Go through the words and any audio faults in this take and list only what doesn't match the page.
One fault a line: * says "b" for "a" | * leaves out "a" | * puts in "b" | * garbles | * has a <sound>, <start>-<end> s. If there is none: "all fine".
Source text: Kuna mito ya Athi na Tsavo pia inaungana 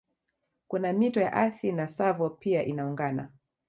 all fine